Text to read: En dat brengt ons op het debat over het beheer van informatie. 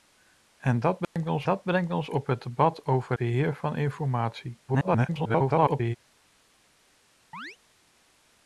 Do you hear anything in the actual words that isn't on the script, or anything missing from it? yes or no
yes